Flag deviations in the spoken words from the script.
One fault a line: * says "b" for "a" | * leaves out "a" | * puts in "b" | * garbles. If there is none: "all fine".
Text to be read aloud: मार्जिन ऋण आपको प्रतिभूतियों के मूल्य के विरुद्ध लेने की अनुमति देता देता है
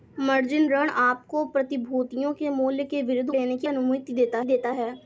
all fine